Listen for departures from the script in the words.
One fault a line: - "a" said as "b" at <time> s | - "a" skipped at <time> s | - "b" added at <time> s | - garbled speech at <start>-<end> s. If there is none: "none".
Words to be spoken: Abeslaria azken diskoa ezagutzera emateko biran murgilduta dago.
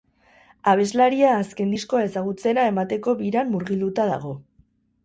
none